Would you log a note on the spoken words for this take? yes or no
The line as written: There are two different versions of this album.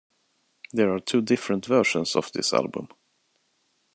no